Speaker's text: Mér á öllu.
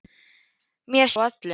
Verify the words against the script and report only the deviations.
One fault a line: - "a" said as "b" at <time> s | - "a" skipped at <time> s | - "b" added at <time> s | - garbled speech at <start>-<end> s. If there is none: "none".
none